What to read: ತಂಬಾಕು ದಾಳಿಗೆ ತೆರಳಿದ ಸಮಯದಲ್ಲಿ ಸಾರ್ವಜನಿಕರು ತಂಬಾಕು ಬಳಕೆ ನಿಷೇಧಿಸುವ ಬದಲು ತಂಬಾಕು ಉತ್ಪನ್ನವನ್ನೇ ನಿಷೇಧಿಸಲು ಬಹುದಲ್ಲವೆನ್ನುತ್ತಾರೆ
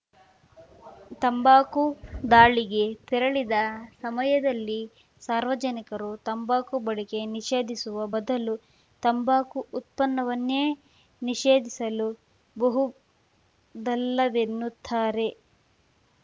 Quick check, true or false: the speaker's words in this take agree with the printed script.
true